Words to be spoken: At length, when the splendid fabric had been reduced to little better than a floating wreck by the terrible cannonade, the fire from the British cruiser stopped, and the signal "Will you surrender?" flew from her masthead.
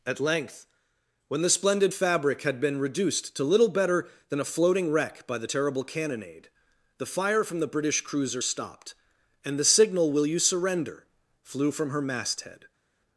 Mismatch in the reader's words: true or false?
false